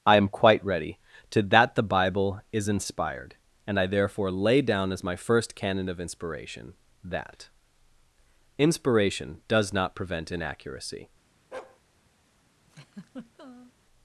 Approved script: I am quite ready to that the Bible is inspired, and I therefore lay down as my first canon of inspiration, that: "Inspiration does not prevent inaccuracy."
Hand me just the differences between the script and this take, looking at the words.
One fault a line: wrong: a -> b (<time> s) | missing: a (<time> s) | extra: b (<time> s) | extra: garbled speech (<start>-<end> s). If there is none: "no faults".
no faults